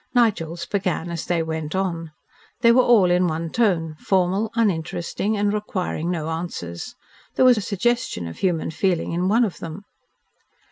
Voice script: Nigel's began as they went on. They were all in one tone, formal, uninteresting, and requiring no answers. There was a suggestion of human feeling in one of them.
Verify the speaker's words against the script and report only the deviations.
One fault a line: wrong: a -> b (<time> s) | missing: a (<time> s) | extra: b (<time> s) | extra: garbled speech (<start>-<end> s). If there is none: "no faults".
no faults